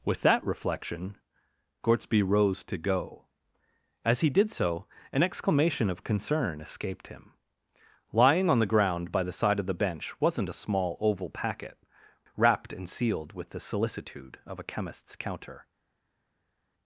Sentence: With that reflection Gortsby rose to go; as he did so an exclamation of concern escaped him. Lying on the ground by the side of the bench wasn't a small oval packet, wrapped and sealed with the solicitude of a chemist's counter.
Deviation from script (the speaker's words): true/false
false